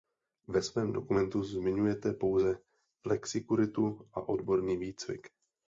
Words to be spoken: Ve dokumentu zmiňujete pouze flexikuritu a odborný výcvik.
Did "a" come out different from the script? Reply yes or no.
no